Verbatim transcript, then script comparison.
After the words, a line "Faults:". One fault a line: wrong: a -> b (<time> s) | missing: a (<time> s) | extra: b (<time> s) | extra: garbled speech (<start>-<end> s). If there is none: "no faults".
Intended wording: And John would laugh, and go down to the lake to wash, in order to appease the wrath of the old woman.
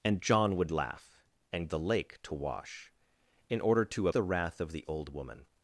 And John would laugh, and the lake to wash, in order to the wrath of the old woman.
Faults:
missing: go down to (1.7 s)
missing: appease (4.1 s)